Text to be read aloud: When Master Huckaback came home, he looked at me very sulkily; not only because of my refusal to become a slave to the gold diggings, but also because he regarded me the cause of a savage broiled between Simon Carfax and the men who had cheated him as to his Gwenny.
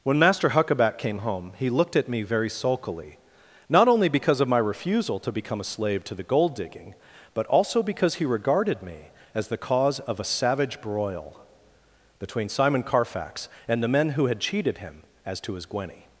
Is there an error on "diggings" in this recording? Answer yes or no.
yes